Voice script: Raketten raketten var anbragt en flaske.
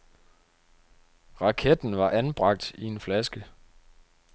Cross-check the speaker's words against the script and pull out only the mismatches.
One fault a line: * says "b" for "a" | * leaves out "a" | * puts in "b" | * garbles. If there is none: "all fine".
* leaves out "raketten"
* puts in "i"